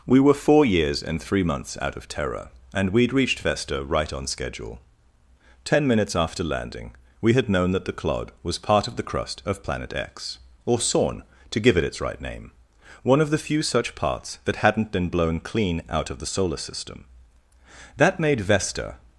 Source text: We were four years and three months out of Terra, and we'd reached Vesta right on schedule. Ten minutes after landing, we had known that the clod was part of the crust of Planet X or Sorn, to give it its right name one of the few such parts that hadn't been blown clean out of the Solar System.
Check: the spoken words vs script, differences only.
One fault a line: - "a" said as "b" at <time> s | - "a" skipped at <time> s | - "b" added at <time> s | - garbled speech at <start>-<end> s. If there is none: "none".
- "That made Vesta" added at 18.0 s